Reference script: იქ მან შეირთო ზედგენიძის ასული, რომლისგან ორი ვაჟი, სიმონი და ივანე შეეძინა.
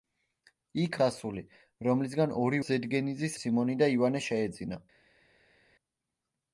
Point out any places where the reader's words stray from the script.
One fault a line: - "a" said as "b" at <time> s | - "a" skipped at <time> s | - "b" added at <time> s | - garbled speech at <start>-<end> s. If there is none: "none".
- "მან შეირთო ზედგენიძის" skipped at 0.9 s
- "ვაჟი" said as "ზედგენიძის" at 2.6 s